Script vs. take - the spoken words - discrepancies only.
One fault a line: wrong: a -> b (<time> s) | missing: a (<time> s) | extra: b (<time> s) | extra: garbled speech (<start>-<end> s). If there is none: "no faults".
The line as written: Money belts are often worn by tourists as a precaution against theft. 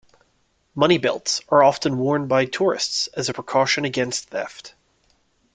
no faults